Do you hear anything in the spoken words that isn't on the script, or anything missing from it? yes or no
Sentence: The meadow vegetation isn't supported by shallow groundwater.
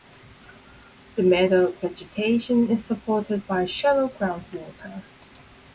yes